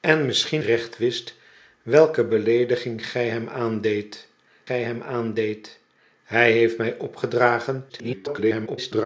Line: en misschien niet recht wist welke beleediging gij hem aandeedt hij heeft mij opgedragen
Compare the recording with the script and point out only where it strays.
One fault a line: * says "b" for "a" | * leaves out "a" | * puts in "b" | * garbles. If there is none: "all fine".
* leaves out "niet"
* puts in "gij hem aandeedt"
* garbles